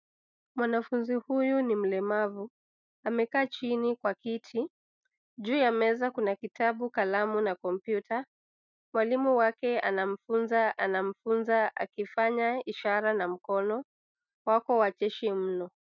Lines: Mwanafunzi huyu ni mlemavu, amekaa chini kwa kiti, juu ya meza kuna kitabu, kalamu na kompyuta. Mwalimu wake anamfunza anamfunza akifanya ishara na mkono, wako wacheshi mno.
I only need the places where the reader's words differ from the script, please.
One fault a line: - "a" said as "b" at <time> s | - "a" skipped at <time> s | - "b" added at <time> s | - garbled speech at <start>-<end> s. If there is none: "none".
none